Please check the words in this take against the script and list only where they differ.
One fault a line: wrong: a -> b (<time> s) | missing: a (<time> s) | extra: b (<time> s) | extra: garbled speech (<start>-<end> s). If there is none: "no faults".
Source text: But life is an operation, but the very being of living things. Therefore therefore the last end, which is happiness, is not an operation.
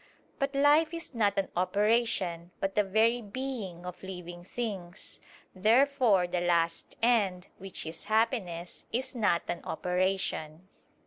extra: not (1.1 s)
missing: therefore (6.3 s)